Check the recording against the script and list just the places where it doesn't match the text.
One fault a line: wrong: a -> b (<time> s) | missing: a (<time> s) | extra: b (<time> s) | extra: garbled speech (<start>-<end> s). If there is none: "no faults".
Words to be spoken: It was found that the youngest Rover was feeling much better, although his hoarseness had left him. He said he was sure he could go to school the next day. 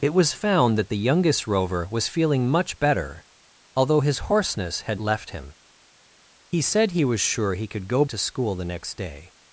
no faults